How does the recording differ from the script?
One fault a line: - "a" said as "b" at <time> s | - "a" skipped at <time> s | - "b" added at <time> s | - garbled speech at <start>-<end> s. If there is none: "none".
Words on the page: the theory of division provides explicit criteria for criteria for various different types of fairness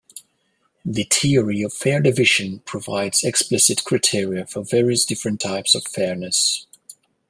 - "fair" added at 1.8 s
- "criteria for" skipped at 4.6 s